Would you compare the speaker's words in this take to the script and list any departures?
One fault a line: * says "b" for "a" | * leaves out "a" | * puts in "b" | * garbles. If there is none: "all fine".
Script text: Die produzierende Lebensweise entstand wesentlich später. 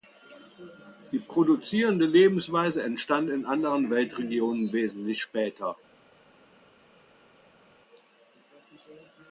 * puts in "in anderen Weltregionen"